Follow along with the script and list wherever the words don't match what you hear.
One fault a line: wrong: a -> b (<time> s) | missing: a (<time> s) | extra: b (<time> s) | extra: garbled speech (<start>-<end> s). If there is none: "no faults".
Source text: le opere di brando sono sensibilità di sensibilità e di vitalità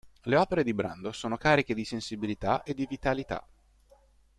wrong: sensibilità -> cariche (1.4 s)